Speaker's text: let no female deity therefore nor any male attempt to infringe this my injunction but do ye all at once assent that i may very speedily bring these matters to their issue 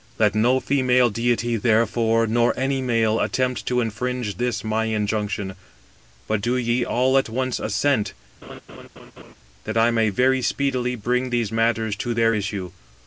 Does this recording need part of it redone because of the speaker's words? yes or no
no